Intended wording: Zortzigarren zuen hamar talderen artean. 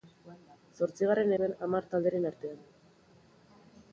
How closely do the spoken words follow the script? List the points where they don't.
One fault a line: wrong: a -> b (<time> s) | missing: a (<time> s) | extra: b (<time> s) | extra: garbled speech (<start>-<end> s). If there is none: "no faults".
no faults